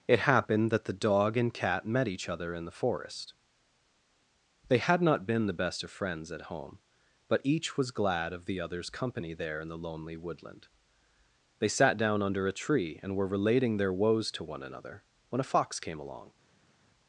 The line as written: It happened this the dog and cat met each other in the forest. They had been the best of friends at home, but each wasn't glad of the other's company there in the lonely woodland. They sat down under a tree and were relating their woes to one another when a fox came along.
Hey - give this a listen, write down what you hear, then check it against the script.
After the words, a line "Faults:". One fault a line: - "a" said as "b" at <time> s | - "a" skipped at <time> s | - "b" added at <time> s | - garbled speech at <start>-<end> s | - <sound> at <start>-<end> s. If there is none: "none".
It happened that the dog and cat met each other in the forest. They had not been the best of friends at home, but each was glad of the other's company there in the lonely woodland. They sat down under a tree and were relating their woes to one another when a fox came along.
Faults:
- "this" said as "that" at 0.7 s
- "not" added at 5.0 s
- "wasn't" said as "was" at 7.8 s